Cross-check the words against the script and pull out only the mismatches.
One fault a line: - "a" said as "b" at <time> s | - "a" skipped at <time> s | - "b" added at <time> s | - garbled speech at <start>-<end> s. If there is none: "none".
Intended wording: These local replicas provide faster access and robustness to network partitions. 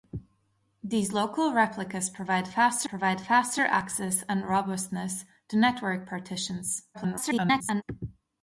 - "provide faster" added at 2.8 s
- garbled speech at 6.9-7.8 s